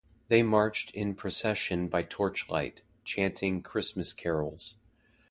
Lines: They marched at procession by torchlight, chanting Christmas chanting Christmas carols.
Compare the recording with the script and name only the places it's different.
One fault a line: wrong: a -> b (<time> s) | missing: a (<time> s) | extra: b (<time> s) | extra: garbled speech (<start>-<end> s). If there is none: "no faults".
wrong: at -> in (0.9 s)
missing: chanting Christmas (4.1 s)